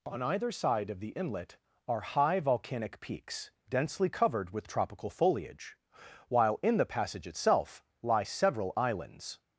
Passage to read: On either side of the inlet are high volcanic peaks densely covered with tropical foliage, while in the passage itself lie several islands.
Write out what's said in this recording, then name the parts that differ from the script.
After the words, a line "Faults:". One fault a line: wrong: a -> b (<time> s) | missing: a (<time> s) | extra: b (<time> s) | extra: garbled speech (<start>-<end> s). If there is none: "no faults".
On either side of the inlet are high volcanic peaks densely covered with tropical foliage, while in the passage itself lie several islands.
Faults:
no faults